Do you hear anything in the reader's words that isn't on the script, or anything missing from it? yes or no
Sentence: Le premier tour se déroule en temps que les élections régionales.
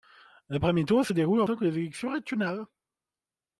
no